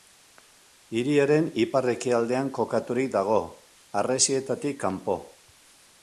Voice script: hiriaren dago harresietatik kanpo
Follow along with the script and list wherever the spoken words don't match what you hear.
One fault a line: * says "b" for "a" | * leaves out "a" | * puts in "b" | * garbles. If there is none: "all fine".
* puts in "ipar ekialdean kokaturik"